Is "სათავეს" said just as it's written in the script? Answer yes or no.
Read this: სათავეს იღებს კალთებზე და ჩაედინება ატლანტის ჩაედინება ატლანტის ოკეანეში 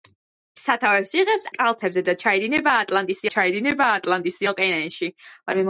yes